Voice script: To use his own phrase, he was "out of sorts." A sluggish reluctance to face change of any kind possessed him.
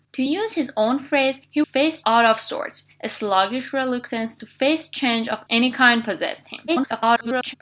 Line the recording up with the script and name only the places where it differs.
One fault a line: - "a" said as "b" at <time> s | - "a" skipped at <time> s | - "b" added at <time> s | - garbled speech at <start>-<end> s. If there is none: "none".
- "was" said as "face" at 1.6 s
- garbled speech at 6.7-7.5 s